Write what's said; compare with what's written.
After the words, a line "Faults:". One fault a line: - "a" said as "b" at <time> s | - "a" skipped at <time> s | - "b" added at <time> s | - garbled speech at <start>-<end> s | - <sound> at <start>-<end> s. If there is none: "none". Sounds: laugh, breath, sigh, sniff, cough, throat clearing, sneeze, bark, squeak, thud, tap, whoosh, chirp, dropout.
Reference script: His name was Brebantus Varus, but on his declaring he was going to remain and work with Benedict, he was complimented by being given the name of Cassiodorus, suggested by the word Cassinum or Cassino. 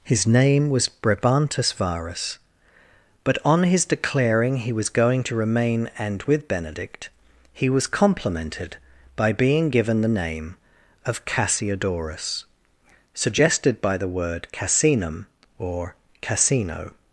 His name was Brebantus Varus, but on his declaring he was going to remain and with Benedict, he was complimented by being given the name of Cassiodorus, suggested by the word Cassinum or Cassino.
Faults:
- "work" skipped at 6.2 s